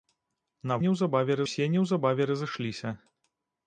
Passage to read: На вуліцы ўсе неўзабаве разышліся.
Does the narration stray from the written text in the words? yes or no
yes